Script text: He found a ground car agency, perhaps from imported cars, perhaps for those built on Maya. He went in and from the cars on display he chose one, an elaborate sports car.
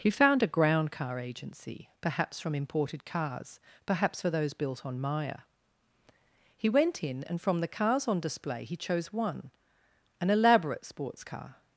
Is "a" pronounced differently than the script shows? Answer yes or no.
no